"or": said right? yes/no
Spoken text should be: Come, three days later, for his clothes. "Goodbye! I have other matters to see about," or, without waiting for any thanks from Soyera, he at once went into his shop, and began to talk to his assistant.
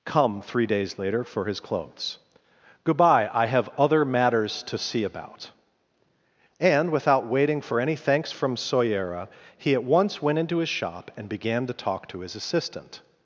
no